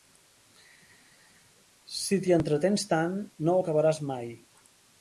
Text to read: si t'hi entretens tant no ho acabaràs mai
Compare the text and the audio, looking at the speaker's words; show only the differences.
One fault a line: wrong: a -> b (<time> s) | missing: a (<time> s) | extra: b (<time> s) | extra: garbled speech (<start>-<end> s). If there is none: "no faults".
no faults